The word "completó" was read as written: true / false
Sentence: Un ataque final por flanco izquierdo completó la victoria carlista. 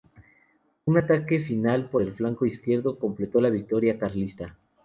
true